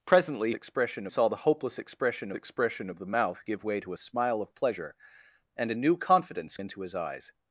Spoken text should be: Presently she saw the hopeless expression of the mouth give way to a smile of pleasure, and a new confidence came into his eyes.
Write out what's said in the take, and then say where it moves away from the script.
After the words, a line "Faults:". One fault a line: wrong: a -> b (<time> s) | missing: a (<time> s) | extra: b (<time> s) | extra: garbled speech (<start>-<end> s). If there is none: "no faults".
Presently expression saw the hopeless expression expression of the mouth give way to a smile of pleasure, and a new confidence into his eyes.
Faults:
wrong: she -> expression (0.5 s)
extra: expression (2.3 s)
missing: came (6.6 s)